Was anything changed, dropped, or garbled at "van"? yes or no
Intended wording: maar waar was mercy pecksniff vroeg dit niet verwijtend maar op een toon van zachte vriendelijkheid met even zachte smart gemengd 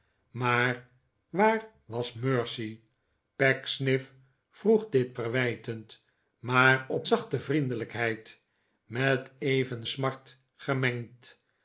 yes